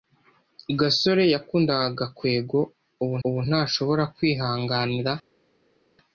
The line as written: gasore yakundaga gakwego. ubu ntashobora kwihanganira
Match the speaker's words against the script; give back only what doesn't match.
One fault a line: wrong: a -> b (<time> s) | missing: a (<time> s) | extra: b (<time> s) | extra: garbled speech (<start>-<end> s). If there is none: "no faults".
extra: ubu (3.3 s)